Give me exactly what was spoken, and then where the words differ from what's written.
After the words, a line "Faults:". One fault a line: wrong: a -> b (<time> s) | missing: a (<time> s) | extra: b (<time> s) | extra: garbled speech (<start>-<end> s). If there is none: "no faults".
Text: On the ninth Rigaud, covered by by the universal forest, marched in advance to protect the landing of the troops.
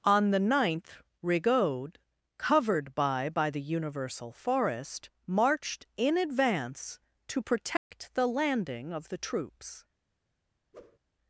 On the ninth Rigaud, covered by by the universal forest, marched in advance to protect the landing of the troops.
Faults:
no faults